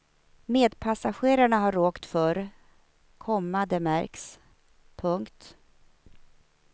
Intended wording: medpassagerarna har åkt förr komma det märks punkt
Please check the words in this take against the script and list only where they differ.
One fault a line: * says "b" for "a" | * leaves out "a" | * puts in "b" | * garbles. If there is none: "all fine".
all fine